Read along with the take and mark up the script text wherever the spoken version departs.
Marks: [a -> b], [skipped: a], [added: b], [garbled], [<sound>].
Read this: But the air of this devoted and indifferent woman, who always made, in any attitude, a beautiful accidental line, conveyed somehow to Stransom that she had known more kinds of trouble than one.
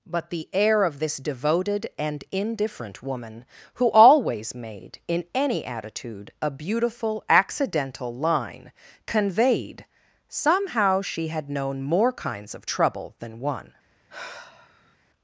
But the air of this devoted and indifferent woman, who always made, in any attitude, a beautiful accidental line, conveyed somehow [skipped: to Stransom that] she had known more kinds of trouble than one. [sigh]